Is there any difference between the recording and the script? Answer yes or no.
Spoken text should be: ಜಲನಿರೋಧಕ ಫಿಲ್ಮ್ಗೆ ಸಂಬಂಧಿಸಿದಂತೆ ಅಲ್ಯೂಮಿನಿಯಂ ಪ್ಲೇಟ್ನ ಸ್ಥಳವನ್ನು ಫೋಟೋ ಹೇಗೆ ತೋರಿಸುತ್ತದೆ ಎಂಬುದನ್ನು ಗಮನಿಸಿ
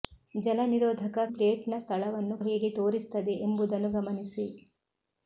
yes